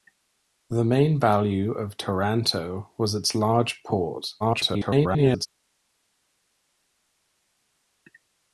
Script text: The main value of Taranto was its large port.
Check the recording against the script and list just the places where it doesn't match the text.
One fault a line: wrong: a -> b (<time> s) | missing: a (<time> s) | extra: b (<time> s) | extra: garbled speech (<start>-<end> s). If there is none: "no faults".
extra: garbled speech (4.4-5.5 s)